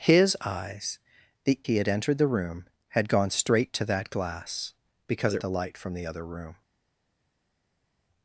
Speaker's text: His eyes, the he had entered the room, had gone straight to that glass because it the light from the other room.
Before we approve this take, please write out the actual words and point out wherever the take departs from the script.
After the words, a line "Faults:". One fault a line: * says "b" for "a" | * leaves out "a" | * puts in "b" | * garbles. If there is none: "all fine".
His eyes, the he had entered the room, had gone straight to that glass because it the light from the other room.
Faults:
all fine